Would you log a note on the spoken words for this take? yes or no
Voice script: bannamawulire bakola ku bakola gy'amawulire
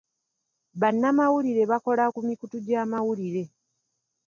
yes